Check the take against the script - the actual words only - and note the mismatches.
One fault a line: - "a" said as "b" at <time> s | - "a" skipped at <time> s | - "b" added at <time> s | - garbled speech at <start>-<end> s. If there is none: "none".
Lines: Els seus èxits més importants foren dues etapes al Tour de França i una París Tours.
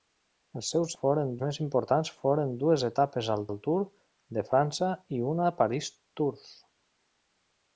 - "èxits" said as "foren" at 1.0 s
- "al" added at 3.5 s